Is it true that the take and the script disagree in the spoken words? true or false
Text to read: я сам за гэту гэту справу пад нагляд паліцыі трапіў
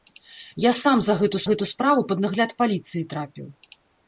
false